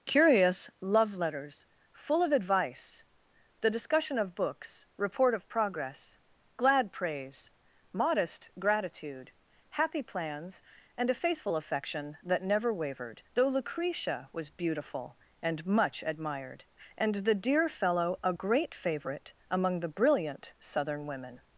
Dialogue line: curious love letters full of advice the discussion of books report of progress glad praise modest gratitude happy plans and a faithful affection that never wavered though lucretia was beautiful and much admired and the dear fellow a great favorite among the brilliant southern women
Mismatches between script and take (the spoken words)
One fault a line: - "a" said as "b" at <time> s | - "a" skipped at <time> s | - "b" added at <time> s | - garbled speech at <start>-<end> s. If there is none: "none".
none